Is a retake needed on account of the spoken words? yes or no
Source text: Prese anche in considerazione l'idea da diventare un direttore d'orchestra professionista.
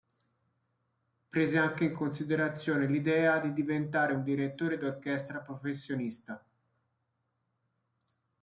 yes